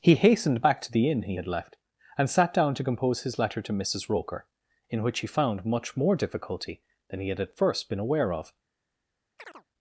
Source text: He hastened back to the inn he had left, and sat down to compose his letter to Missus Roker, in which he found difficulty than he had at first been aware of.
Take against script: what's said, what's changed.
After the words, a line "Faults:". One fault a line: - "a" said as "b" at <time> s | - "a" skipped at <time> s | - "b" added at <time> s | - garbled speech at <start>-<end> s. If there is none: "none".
He hastened back to the inn he had left, and sat down to compose his letter to Missus Roker, in which he found much more difficulty than he had at first been aware of.
Faults:
- "much more" added at 5.6 s